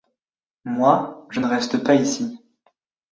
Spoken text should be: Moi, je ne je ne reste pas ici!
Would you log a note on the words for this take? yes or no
yes